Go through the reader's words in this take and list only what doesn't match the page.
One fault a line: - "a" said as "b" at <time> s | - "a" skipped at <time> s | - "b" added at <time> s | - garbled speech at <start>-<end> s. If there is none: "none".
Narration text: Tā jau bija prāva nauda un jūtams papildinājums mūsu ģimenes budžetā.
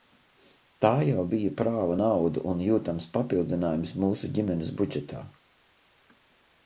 none